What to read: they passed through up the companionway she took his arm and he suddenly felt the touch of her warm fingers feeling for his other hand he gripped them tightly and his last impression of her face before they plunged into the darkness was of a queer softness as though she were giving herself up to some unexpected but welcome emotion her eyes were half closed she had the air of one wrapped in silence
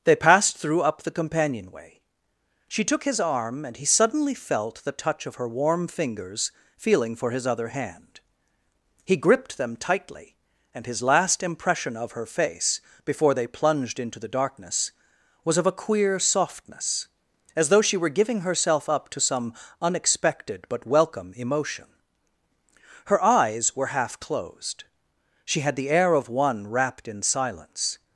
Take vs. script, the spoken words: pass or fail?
pass